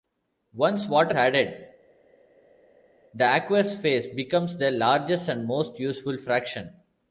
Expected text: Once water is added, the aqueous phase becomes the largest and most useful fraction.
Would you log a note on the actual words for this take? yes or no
yes